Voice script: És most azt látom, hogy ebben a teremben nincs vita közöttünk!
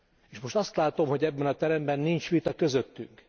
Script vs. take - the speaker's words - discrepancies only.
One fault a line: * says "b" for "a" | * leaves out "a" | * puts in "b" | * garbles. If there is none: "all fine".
all fine